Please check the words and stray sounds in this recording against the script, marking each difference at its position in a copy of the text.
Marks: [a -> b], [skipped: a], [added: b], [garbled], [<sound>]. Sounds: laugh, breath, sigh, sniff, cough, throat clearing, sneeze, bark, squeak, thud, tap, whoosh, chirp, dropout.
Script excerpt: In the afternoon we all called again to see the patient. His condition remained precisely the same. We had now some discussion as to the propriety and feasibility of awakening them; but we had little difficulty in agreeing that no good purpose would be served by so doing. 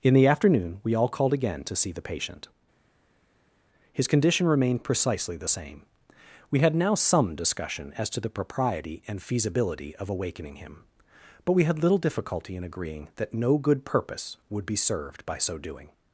In the afternoon we all called again to see the patient. His condition remained precisely the same. We had now some discussion as to the propriety and feasibility of awakening [them; -> him] but we had little difficulty in agreeing that no good purpose would be served by so doing.